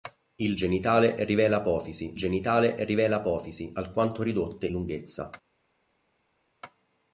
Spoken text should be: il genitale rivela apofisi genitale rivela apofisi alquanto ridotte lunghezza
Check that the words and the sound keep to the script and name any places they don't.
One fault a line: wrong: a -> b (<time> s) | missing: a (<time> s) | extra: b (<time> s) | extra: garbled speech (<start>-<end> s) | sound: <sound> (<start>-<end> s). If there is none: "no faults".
no faults